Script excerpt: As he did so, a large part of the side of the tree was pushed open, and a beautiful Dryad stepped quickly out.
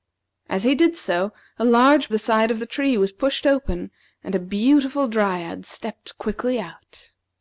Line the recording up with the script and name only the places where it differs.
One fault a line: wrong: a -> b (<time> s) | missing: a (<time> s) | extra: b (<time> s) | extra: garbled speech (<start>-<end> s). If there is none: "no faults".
missing: part of (2.1 s)